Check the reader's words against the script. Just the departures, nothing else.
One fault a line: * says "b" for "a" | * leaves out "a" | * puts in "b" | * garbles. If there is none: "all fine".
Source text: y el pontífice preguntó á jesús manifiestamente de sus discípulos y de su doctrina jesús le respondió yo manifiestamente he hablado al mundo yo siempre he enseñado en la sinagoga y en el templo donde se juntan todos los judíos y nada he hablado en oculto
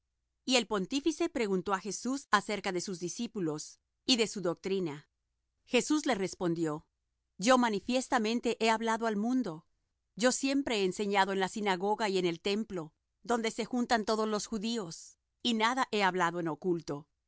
* says "acerca" for "manifiestamente"